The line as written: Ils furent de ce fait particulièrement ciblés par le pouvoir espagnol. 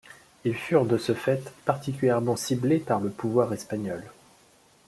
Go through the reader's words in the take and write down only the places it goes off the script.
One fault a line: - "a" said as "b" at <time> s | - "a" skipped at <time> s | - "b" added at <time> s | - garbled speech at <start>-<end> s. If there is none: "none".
none